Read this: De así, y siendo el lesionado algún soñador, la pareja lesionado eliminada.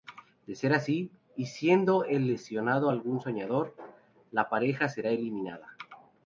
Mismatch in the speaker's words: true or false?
true